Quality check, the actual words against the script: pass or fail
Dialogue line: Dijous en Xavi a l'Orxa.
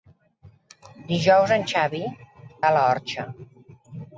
pass